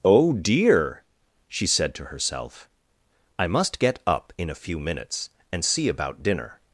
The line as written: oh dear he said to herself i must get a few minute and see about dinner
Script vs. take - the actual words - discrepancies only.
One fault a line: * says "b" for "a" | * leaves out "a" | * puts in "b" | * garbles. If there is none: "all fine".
* says "she" for "he"
* puts in "up in"
* says "minutes" for "minute"